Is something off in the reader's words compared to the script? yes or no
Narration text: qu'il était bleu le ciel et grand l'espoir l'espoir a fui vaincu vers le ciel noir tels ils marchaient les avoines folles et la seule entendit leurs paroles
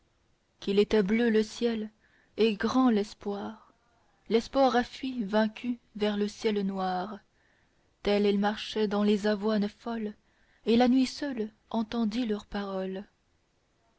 yes